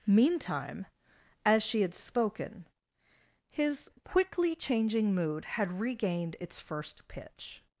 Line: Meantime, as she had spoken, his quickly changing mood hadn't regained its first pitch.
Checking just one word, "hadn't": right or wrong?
wrong